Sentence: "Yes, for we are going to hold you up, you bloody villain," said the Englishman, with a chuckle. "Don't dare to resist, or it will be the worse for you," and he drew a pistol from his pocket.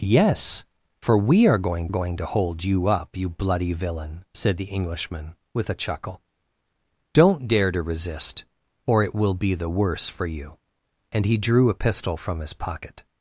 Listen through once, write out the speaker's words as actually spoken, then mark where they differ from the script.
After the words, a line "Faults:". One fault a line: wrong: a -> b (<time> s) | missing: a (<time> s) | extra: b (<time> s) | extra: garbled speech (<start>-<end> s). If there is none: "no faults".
"Yes, for we are going going to hold you up, you bloody villain," said the Englishman, with a chuckle. "Don't dare to resist, or it will be the worse for you," and he drew a pistol from his pocket.
Faults:
extra: going (1.9 s)